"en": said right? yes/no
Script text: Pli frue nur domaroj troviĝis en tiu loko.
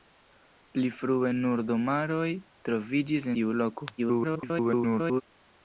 no